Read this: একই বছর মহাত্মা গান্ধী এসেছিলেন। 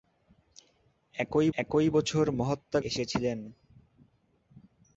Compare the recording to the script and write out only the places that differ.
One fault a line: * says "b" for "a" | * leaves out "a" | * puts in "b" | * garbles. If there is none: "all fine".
* puts in "একই"
* leaves out "গান্ধী"